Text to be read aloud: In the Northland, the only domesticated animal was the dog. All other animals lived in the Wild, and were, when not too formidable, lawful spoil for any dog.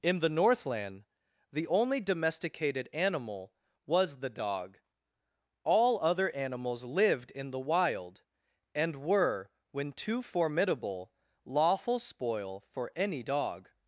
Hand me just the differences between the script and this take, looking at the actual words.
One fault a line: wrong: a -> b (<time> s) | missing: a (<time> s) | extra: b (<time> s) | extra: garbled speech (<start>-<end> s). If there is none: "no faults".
missing: not (9.9 s)